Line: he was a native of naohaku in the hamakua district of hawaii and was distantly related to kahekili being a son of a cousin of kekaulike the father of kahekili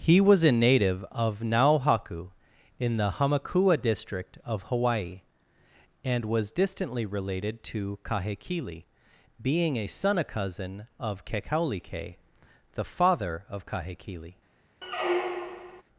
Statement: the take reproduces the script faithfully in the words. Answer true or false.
false